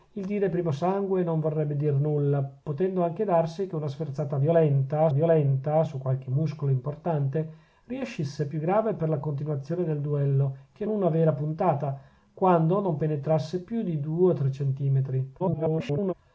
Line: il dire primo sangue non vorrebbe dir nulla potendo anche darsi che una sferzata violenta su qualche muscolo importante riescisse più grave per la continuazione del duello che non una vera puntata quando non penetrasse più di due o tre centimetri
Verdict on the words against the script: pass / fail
fail